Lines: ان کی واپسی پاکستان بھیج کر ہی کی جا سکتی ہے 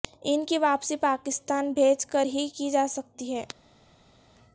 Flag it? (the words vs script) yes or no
no